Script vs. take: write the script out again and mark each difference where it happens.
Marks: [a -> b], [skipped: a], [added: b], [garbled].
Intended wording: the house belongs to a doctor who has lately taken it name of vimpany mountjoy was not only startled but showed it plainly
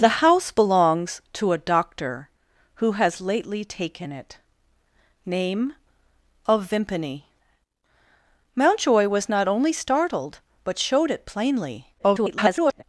the house belongs to a doctor who has lately taken it name of vimpany mountjoy was not only startled but showed it plainly [garbled]